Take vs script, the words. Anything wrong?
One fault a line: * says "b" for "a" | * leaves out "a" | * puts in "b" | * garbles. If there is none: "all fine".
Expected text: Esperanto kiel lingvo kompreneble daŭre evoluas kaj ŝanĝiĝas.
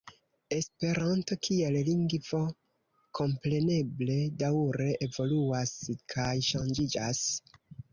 all fine